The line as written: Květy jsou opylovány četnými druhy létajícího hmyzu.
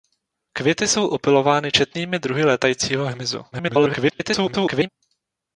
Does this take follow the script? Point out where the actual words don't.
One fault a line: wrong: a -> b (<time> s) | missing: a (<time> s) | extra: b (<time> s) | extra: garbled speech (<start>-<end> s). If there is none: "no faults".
extra: garbled speech (3.5-4.9 s)